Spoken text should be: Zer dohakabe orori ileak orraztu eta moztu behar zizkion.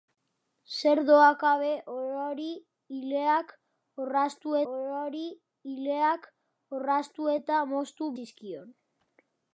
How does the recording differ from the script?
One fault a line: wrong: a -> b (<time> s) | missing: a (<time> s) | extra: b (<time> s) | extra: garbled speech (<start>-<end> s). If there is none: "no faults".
extra: orori ileak orraztu (4.7 s)
missing: behar (8.1 s)